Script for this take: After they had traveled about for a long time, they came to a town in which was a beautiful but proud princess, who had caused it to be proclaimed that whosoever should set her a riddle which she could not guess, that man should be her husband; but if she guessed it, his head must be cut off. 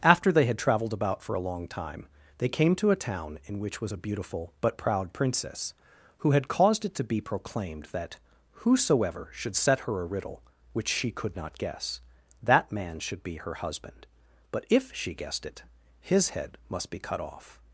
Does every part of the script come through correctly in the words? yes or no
yes